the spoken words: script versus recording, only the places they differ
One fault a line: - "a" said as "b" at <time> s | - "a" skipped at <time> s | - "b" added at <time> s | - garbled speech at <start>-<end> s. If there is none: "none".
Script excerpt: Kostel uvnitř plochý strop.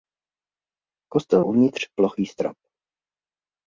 none